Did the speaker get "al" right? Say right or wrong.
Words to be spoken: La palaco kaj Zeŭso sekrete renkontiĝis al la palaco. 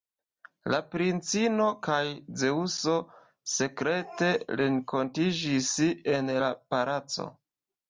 wrong